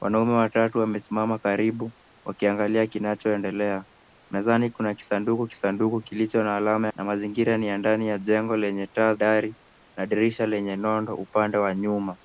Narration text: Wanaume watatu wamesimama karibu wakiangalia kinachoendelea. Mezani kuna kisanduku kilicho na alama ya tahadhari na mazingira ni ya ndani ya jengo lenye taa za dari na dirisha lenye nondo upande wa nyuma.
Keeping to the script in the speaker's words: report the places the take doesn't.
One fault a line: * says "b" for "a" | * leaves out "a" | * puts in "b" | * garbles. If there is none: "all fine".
* puts in "kisanduku"
* leaves out "ya tahadhari"
* leaves out "za"